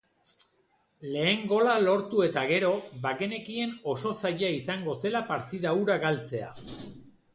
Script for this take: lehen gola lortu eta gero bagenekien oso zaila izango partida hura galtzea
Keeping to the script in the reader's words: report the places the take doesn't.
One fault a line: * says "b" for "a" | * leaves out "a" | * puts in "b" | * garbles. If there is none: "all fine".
* puts in "zela"